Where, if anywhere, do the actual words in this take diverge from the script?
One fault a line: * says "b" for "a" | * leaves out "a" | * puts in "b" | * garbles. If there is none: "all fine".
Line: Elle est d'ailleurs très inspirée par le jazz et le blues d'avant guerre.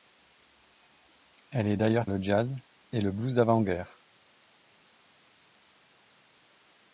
* leaves out "très inspirée par"